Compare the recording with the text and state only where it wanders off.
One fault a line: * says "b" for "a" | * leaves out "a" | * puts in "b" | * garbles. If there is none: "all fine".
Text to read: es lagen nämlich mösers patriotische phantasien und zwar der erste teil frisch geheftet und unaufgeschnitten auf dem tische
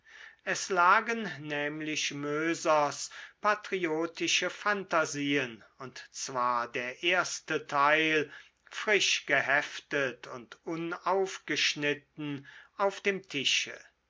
all fine